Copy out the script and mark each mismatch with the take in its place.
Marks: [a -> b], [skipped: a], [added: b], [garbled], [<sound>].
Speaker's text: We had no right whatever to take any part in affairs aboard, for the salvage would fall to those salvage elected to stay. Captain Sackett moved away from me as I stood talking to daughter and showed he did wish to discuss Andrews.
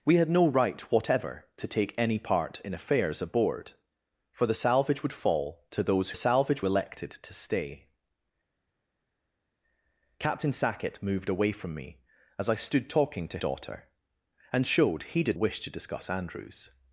We had no right whatever to take any part in affairs aboard, for the salvage would fall to those salvage elected to stay. Captain Sackett moved away from me as I stood talking to daughter and showed he did wish to discuss Andrews.